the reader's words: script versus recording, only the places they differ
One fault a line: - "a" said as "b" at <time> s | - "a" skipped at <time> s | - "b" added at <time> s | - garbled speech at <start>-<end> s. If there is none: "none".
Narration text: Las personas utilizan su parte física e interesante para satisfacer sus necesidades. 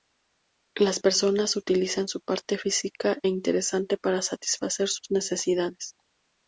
none